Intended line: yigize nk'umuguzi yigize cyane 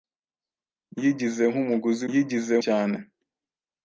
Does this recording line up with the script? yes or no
yes